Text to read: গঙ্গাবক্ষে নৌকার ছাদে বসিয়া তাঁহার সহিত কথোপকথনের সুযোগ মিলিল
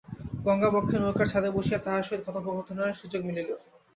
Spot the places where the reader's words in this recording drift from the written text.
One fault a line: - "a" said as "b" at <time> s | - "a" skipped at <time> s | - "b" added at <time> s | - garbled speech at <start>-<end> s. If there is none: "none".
none